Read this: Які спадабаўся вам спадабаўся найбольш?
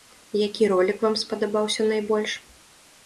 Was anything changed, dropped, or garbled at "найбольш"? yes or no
no